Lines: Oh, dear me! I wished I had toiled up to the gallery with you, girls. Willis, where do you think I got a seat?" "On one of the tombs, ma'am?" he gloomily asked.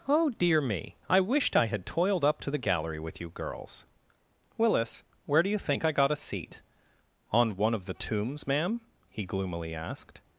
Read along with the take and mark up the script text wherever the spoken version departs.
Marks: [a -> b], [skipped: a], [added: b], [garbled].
Oh, dear me! I wished I had toiled up to the gallery with you, girls. Willis, where do you think I got a seat?" "On one of the tombs, ma'am?" he gloomily asked.